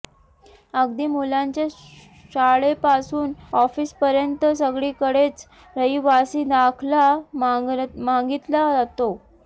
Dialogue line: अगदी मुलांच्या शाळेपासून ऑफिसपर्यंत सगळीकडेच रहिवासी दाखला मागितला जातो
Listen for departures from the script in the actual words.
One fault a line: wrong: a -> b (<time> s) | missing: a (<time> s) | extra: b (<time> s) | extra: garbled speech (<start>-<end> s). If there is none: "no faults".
no faults